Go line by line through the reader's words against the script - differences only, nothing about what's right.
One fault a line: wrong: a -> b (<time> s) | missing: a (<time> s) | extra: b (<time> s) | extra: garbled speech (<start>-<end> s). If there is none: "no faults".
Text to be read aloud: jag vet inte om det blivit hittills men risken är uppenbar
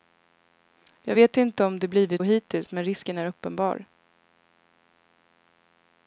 no faults